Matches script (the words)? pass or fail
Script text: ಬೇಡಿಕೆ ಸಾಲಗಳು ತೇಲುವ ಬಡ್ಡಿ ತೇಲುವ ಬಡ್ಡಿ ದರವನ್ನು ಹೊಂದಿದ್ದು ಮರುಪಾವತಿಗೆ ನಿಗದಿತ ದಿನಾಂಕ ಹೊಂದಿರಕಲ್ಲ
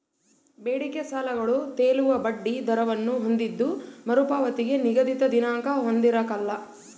fail